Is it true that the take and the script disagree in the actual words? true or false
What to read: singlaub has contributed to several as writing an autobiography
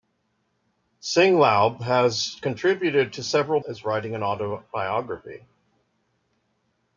false